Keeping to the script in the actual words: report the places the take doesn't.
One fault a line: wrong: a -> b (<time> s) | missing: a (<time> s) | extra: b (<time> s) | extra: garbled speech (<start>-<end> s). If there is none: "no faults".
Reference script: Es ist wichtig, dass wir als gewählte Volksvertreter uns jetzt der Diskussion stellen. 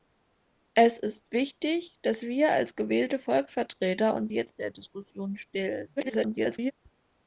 extra: garbled speech (6.0-6.7 s)